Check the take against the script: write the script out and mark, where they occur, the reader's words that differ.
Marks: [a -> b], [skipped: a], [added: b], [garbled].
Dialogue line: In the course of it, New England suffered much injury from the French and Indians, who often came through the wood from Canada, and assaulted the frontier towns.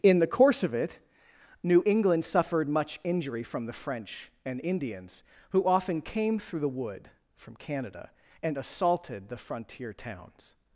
In the course of it, New England suffered much injury from the French and Indians, who often came through the wood from Canada, and assaulted the frontier towns.